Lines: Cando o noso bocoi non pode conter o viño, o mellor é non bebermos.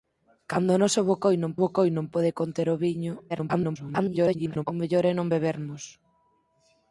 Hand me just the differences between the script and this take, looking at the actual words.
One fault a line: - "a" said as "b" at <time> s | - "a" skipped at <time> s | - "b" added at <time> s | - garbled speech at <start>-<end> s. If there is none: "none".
- "bocoi non" added at 1.6 s
- garbled speech at 3.3-4.6 s